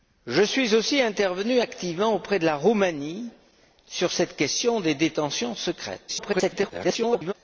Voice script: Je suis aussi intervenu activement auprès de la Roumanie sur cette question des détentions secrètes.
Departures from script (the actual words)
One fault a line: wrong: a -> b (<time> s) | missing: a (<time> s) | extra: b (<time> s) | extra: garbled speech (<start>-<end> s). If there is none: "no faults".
extra: garbled speech (6.1-7.3 s)